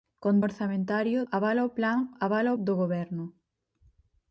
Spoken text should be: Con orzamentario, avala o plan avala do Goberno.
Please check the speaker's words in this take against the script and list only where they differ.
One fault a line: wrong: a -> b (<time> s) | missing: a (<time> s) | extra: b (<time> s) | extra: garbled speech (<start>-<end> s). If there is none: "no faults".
no faults